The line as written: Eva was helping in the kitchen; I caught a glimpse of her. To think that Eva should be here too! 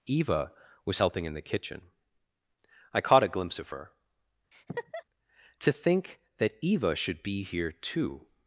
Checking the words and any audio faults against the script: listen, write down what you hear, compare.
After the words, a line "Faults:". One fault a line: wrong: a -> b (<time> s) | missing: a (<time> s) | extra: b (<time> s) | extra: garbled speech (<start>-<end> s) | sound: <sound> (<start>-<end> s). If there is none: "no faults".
Eva was helping in the kitchen; I caught a glimpse of her. To think that Eva should be here too!
Faults:
sound: laugh (4.5-5.0 s)